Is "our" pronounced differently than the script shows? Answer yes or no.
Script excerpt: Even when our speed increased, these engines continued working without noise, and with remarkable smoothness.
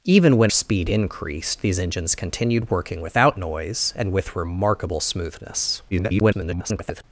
yes